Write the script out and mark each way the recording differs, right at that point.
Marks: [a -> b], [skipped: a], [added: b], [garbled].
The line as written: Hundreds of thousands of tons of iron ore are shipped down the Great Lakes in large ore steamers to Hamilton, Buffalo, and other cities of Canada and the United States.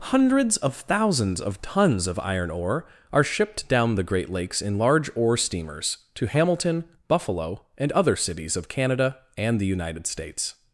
Hundreds of thousands of tons of iron ore are shipped down the Great Lakes in large ore steamers to Hamilton, Buffalo, and other cities of Canada and the United States.